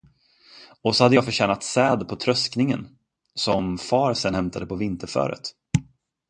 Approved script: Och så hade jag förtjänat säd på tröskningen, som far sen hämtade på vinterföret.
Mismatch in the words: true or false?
false